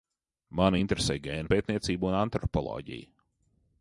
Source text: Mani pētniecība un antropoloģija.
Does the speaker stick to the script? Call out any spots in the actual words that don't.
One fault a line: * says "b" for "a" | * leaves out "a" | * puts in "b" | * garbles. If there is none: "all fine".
* puts in "interesē gēnu"